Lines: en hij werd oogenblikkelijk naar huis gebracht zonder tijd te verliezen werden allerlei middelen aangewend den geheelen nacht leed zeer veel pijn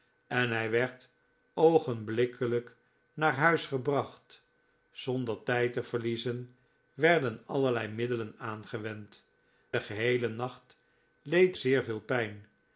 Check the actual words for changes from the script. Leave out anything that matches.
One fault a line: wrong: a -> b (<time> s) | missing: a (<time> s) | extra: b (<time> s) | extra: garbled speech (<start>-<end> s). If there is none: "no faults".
no faults